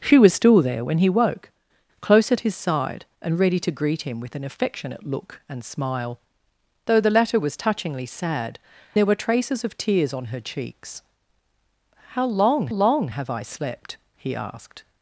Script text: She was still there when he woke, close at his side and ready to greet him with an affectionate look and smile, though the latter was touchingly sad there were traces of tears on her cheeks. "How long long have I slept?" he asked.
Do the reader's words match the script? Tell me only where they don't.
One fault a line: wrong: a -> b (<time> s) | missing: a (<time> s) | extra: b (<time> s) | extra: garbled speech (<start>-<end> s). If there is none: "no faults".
no faults